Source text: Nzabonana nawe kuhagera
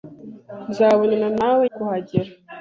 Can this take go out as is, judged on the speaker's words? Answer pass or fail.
pass